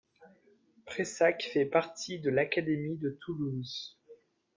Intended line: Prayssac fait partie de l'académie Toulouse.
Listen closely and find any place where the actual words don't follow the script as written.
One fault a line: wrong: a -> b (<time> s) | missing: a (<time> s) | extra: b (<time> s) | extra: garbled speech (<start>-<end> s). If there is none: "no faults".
extra: de (3.0 s)